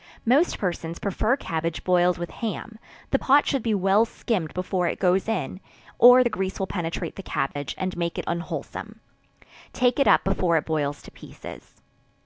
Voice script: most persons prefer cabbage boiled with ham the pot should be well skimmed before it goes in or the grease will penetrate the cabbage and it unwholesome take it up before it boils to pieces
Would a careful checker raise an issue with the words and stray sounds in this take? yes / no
yes